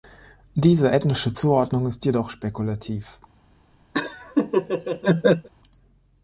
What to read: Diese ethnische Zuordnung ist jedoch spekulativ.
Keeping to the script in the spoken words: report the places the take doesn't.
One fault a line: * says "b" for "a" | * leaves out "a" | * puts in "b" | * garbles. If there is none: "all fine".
all fine